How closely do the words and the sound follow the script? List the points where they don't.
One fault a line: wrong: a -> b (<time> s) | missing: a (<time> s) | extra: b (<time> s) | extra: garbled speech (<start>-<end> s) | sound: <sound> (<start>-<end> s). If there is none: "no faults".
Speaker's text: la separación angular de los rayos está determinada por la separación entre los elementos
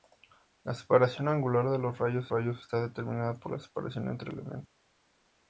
extra: rayos (2.3 s)
missing: los (4.3 s)